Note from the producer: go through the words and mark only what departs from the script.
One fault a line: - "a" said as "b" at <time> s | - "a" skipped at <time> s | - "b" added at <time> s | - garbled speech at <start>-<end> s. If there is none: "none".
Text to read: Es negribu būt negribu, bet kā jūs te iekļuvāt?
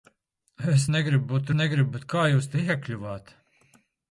none